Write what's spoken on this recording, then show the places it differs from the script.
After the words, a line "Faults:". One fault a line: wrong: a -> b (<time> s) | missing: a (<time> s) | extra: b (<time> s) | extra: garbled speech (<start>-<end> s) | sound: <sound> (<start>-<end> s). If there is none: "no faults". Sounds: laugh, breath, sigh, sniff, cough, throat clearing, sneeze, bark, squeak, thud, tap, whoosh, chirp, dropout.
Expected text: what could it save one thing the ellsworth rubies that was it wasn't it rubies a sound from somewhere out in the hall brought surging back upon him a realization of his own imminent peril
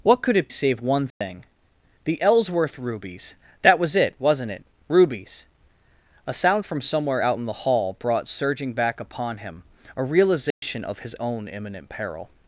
what could it save one thing the ellsworth rubies that was it wasn't it rubies a sound from somewhere out in the hall brought surging back upon him a realization of his own imminent peril
Faults:
sound: dropout (1.1-1.2 s)
sound: dropout (10.5-10.6 s)